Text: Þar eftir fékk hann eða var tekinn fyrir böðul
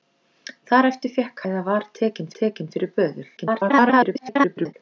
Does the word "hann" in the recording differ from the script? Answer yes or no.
yes